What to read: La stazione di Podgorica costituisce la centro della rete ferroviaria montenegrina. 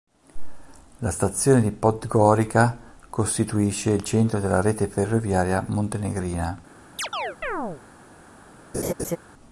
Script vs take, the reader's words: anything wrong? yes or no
yes